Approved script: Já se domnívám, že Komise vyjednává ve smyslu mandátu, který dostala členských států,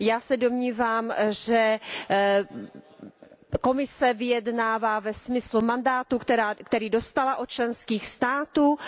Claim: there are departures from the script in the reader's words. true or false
true